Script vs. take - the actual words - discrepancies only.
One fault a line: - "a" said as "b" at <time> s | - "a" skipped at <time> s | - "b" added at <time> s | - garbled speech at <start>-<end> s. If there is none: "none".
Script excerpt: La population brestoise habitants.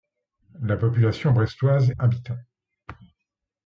none